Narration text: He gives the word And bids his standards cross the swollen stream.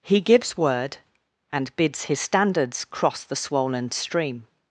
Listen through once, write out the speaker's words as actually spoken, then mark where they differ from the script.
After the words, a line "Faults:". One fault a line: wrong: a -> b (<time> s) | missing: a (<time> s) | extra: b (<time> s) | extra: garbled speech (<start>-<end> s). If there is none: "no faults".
He gives word And bids his standards cross the swollen stream.
Faults:
missing: the (0.6 s)